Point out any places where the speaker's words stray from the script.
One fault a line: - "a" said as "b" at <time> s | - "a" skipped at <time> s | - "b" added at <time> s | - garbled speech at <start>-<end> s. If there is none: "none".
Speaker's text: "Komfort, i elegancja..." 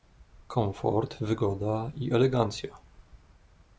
- "wygoda" added at 1.2 s